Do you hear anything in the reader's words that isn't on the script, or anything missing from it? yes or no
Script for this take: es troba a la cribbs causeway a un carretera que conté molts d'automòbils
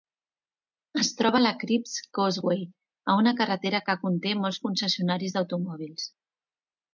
yes